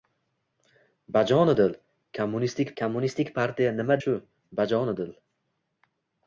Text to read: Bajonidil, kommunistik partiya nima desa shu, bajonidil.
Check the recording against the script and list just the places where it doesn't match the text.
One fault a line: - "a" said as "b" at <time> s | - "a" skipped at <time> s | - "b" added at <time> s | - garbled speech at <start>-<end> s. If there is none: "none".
- "kommunistik" added at 2.8 s
- "desa" skipped at 4.0 s